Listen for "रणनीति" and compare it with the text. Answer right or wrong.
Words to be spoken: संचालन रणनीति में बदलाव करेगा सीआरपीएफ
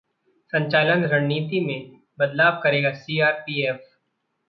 right